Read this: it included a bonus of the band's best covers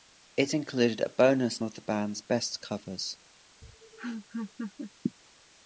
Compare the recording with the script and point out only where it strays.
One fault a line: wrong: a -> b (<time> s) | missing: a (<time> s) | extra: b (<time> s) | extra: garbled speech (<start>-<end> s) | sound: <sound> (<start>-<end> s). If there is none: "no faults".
sound: laugh (3.6-4.9 s)